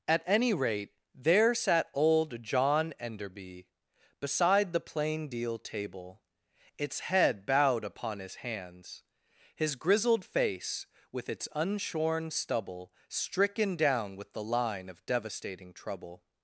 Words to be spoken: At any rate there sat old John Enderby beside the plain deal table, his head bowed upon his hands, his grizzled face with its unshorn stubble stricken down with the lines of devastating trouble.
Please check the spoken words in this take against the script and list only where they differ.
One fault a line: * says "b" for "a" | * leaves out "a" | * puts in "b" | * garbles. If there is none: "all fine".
* says "its" for "his"
* says "line" for "lines"